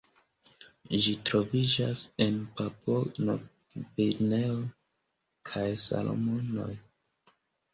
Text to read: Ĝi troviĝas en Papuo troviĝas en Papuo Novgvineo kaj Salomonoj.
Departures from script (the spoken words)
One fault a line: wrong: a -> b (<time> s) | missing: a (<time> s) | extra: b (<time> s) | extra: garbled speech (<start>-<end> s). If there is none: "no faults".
missing: troviĝas en Papuo (3.0 s)